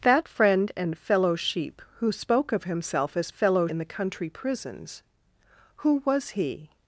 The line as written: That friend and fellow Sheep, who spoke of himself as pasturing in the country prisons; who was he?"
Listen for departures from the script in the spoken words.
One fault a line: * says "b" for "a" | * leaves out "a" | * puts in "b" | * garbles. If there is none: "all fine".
* says "fellow" for "pasturing"